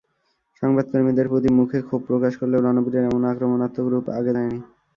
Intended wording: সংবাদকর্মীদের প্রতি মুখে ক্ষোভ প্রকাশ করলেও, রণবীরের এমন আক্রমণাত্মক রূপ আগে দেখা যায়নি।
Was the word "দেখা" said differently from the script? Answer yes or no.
yes